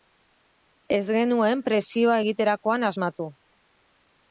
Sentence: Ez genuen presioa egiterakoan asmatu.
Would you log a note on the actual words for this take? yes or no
no